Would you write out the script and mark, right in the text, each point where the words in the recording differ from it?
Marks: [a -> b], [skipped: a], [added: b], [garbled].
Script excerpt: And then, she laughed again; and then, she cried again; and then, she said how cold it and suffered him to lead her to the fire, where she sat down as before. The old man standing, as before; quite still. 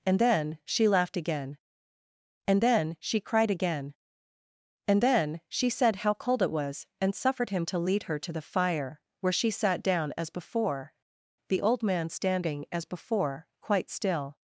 And then, she laughed again; and then, she cried again; and then, she said how cold it [added: was] and suffered him to lead her to the fire, where she sat down as before. The old man standing, as before; quite still.